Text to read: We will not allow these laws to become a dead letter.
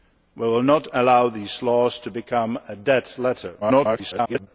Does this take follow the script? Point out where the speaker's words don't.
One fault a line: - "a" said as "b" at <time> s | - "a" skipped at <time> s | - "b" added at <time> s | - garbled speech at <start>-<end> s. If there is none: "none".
- garbled speech at 3.6-4.5 s